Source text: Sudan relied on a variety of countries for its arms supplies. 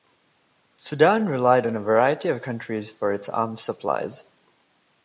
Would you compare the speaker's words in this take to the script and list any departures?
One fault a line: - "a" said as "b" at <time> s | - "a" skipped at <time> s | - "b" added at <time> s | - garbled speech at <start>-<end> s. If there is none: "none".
none